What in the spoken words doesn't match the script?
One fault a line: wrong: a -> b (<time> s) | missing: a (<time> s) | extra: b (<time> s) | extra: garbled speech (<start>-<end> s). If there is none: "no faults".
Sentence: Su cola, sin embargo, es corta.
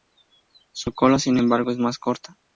extra: más (1.8 s)